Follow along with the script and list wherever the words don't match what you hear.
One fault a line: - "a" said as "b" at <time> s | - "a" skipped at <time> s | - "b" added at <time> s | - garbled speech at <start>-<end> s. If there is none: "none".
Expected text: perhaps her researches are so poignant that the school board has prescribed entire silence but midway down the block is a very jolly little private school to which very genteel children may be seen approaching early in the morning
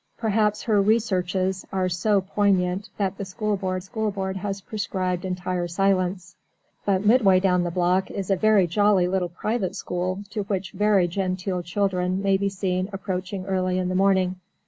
- "school board" added at 3.8 s